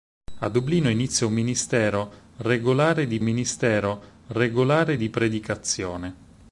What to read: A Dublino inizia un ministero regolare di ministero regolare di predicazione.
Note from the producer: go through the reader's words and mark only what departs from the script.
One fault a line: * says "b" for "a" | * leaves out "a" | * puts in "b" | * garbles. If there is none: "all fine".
all fine